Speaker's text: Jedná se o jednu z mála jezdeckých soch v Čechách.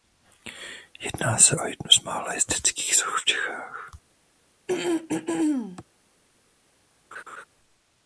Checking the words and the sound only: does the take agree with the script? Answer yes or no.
no